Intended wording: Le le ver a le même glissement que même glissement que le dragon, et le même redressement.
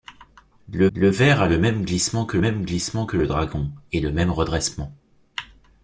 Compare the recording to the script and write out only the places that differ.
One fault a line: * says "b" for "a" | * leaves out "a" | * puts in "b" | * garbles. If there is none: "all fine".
all fine